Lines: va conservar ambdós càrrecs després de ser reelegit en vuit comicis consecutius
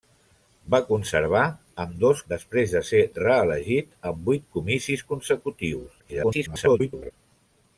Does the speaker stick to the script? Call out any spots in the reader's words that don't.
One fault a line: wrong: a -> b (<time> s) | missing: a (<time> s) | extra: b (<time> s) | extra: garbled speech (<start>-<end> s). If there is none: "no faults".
missing: càrrecs (2.2 s)
extra: garbled speech (6.0-7.1 s)